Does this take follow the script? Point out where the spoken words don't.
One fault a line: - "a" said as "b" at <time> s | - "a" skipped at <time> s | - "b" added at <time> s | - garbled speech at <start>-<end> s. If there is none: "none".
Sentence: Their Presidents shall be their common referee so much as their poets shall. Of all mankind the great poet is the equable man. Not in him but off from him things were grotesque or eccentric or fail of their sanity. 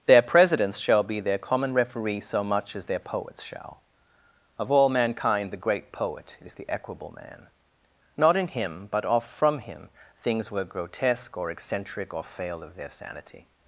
none